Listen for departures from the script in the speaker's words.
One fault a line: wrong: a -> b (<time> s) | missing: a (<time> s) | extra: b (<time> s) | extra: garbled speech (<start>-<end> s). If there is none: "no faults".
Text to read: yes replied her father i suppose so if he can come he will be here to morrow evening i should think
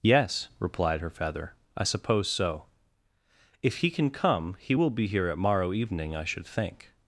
wrong: father -> feather (1.1 s)
wrong: to -> at (5.3 s)